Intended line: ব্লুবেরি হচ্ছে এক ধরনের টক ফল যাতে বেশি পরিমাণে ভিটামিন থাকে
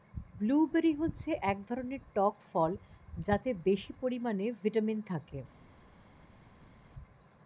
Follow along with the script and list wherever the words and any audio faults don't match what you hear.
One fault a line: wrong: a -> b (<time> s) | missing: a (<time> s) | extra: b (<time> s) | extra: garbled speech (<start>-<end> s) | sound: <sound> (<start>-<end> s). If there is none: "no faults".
no faults